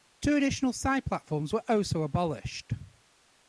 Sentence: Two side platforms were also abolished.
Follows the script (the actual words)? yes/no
no